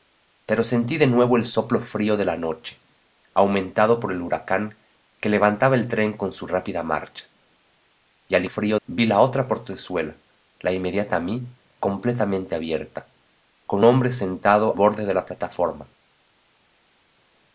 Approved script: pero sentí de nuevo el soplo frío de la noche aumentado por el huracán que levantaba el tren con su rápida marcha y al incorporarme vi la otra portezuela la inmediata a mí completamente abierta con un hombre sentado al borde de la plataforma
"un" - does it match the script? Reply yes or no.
no